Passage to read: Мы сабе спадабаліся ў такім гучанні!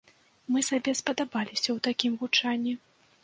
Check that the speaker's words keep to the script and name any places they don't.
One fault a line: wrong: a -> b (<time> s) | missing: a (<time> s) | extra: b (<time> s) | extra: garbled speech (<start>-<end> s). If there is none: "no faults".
no faults